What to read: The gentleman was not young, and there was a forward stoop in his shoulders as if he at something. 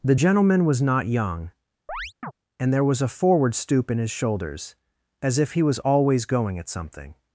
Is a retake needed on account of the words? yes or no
yes